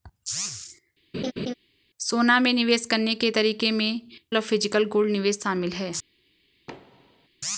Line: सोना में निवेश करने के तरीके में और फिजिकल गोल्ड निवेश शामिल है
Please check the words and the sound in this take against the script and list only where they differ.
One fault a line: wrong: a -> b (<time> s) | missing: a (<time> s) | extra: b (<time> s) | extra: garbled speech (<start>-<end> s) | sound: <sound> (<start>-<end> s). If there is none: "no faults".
sound: laugh (1.1-1.5 s)
sound: thud (6.7-7.3 s)